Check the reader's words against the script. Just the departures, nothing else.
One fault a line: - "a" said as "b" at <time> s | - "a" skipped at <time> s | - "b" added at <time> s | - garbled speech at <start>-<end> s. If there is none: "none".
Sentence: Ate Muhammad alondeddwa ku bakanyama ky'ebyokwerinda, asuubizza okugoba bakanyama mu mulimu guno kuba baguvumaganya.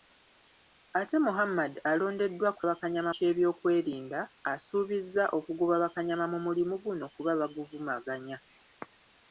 none